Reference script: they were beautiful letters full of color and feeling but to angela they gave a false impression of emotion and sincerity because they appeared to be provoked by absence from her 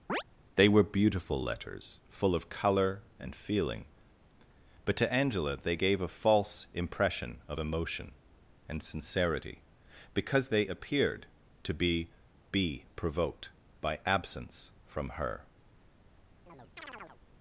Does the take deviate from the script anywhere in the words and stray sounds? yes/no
yes